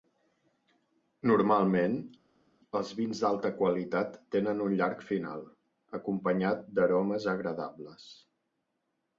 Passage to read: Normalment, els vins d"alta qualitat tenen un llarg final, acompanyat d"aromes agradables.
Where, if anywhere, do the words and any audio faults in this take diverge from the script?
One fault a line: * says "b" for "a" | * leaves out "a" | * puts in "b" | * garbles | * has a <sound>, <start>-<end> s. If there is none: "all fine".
all fine